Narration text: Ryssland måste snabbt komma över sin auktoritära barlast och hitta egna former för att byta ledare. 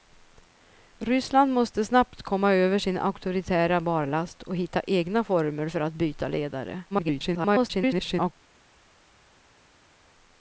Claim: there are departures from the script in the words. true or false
true